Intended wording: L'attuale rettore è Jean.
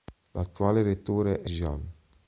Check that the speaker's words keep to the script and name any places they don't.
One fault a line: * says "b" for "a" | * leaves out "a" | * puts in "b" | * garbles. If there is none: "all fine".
all fine